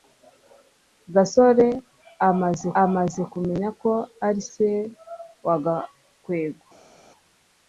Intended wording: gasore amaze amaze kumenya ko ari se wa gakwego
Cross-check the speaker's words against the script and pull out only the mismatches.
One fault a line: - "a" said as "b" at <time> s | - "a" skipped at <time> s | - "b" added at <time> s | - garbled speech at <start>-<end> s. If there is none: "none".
none